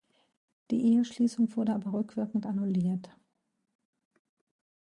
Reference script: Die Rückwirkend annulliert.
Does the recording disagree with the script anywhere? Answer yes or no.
yes